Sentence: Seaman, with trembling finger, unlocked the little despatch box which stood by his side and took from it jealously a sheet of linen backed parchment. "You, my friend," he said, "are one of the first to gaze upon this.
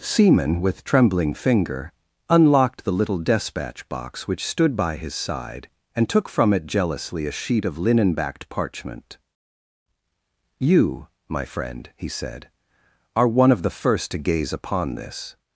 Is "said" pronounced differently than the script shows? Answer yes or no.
no